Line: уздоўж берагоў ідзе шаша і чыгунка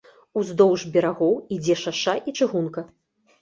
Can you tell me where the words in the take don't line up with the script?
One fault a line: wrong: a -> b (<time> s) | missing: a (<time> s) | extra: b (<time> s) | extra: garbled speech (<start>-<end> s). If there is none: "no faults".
no faults